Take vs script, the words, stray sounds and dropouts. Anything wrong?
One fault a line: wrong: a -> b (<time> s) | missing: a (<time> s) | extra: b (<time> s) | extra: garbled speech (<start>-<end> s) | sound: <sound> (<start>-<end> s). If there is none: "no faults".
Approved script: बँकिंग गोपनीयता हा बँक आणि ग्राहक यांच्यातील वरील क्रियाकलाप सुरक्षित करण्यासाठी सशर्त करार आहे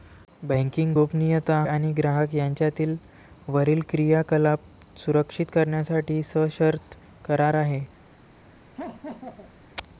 missing: हा बँक (1.6 s)
sound: laugh (8.8-9.6 s)